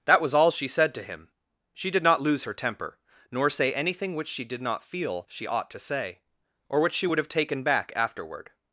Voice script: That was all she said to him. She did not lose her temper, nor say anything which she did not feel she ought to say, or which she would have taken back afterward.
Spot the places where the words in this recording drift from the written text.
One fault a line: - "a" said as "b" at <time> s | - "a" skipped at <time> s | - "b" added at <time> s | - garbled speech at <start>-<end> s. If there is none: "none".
none